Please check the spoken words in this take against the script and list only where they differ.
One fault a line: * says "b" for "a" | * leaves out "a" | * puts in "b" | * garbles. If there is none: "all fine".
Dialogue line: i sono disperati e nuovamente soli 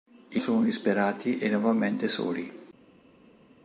all fine